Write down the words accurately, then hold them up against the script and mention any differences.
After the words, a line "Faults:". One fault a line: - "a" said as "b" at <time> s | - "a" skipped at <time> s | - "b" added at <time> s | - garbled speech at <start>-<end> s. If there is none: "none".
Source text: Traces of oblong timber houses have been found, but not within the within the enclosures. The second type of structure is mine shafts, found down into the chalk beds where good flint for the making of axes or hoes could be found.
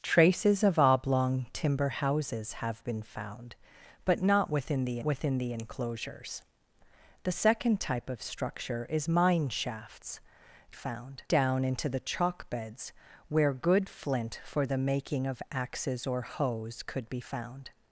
Traces of oblong timber houses have been found, but not within the within the enclosures. The second type of structure is mine shafts, found down into the chalk beds where good flint for the making of axes or hoes could be found.
Faults:
none